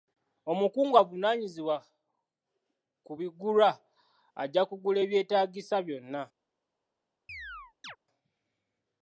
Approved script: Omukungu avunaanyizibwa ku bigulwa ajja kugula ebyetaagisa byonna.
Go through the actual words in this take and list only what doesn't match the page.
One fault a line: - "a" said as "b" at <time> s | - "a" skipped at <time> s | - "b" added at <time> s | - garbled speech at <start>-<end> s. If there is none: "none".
none